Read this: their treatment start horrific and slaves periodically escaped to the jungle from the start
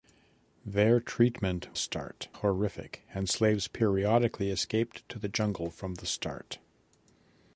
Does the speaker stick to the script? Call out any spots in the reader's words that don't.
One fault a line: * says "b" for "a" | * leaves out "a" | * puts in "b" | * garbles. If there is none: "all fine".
all fine